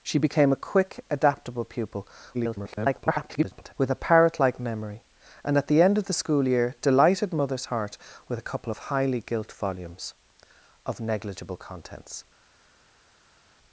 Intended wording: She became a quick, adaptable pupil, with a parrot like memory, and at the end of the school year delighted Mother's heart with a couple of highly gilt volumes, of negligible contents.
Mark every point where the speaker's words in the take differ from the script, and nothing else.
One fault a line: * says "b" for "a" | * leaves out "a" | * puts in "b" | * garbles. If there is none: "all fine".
* garbles